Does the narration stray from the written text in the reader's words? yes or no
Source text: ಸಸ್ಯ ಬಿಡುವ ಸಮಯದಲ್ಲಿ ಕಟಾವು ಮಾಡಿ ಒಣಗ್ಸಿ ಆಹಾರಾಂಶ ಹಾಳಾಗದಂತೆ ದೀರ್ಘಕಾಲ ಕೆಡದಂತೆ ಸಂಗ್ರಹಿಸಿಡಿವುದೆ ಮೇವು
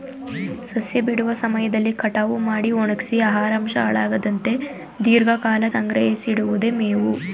yes